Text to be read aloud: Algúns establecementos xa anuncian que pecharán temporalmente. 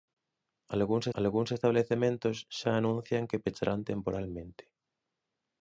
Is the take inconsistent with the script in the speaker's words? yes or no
yes